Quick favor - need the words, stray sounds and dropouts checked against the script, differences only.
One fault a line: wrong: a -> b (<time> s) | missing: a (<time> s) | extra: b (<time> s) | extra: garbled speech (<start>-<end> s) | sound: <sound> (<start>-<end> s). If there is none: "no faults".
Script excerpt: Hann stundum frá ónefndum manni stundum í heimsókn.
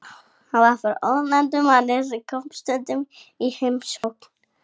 wrong: stundum -> var (0.6 s)
extra: sem kom (2.1 s)
sound: dropout (4.0-4.0 s)